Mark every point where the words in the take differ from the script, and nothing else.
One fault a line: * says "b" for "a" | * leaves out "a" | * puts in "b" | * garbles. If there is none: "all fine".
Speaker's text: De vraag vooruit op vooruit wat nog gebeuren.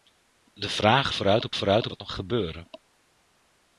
all fine